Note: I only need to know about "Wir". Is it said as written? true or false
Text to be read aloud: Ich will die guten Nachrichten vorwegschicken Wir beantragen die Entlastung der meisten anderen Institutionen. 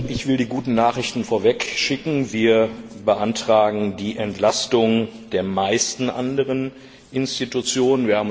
true